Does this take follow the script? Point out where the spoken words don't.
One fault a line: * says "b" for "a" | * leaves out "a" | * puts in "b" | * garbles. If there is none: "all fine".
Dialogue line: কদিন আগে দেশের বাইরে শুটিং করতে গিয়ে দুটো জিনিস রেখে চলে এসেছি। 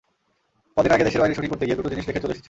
all fine